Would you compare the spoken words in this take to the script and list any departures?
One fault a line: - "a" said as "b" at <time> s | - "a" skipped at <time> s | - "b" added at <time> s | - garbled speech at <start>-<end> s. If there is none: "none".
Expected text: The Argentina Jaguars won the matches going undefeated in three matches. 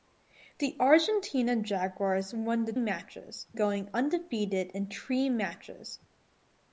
none